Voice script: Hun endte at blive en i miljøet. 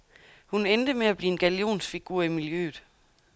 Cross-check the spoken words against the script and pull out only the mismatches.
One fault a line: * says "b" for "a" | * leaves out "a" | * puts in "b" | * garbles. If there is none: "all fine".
* puts in "med"
* puts in "gallionsfigur"